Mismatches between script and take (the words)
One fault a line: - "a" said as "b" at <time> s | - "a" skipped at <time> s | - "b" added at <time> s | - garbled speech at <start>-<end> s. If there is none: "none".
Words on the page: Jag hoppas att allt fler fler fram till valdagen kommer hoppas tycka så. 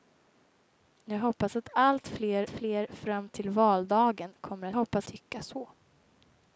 none